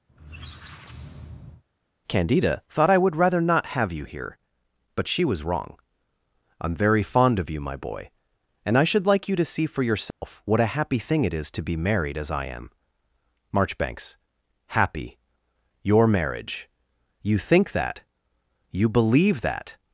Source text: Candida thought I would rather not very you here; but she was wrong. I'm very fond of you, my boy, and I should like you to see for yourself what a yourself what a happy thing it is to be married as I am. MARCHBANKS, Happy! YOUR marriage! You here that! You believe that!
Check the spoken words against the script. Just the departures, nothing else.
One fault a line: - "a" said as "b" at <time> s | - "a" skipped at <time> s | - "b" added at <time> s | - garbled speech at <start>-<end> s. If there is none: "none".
- "very" said as "have" at 3.7 s
- "yourself what a" skipped at 10.8 s
- "here" said as "think" at 17.4 s